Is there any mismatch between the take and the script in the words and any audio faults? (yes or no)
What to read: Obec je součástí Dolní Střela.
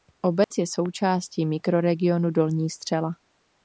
yes